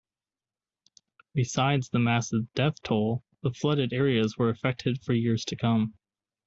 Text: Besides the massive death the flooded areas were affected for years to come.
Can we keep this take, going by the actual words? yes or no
no